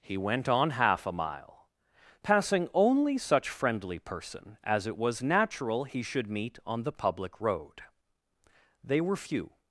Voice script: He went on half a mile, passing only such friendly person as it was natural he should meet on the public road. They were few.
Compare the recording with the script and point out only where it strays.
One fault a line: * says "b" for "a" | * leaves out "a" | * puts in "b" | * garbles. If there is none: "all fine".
all fine